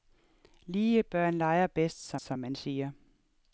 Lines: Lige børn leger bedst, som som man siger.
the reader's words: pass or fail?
pass